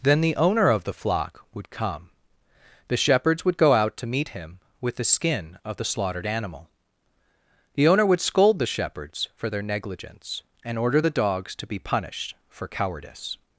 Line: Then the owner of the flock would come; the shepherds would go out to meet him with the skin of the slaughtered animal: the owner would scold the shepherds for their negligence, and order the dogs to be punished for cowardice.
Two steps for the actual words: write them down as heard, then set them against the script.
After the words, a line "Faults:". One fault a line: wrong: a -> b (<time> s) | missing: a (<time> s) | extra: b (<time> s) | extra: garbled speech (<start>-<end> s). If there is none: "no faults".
Then the owner of the flock would come; the shepherds would go out to meet him with the skin of the slaughtered animal: the owner would scold the shepherds for their negligence, and order the dogs to be punished for cowardice.
Faults:
no faults